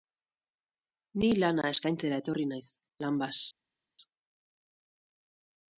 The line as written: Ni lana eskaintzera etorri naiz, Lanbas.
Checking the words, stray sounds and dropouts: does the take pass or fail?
pass